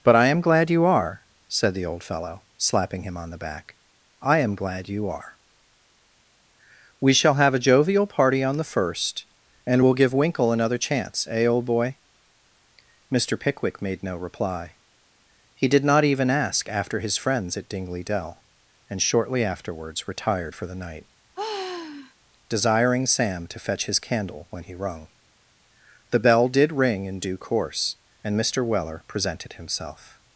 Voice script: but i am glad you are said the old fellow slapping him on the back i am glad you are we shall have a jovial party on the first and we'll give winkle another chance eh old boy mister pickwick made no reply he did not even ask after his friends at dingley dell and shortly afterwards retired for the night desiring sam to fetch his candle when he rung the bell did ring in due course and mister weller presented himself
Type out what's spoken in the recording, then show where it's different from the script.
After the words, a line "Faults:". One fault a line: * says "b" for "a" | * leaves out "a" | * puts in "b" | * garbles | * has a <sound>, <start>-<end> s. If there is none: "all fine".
but i am glad you are said the old fellow slapping him on the back i am glad you are we shall have a jovial party on the first and we'll give winkle another chance eh old boy mister pickwick made no reply he did not even ask after his friends at dingley dell and shortly afterwards retired for the night desiring sam to fetch his candle when he rung the bell did ring in due course and mister weller presented himself
Faults:
* has a sigh, 21.4-22.1 s